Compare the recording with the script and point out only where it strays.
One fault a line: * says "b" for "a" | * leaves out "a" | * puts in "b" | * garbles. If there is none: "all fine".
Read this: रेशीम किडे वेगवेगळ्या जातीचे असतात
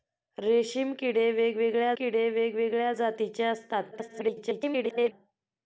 * puts in "किडे वेगवेगळ्या"
* garbles